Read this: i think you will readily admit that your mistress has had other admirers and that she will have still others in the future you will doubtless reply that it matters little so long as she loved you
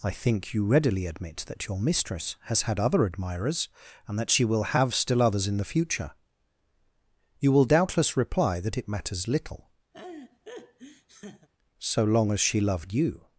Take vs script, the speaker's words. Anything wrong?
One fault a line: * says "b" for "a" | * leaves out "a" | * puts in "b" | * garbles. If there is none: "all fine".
* leaves out "will"